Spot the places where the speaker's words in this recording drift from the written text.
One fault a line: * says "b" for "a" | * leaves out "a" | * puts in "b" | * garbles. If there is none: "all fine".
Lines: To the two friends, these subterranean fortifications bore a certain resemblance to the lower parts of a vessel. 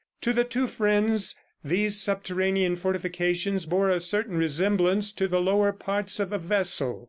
all fine